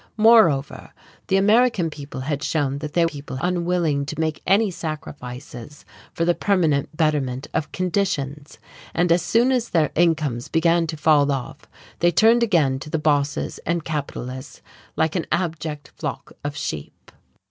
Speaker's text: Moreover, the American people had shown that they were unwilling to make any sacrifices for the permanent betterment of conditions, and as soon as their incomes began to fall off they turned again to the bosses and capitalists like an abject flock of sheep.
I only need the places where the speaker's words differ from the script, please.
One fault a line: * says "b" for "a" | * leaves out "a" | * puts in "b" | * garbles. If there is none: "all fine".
* says "people" for "were"